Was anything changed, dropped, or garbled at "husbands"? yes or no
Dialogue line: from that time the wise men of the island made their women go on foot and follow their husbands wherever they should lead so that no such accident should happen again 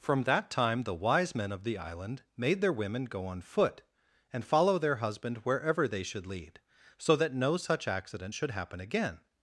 yes